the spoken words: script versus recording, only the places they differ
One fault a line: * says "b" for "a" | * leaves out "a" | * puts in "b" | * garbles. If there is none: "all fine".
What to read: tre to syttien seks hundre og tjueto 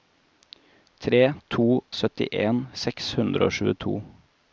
all fine